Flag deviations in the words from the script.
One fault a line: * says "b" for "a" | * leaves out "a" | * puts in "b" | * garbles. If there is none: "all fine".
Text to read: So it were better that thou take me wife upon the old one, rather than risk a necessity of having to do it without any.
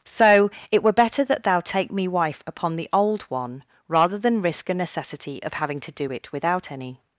all fine